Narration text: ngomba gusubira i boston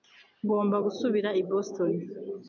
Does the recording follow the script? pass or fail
pass